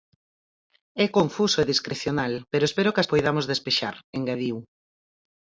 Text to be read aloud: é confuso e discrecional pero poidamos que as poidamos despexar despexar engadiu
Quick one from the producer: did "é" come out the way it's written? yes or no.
yes